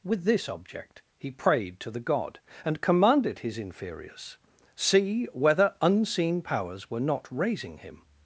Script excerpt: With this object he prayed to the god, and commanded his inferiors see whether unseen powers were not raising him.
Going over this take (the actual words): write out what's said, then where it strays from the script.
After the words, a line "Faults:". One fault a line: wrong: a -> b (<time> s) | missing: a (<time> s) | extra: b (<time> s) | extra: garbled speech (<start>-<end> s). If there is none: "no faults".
With this object he prayed to the god, and commanded his inferiors see whether unseen powers were not raising him.
Faults:
no faults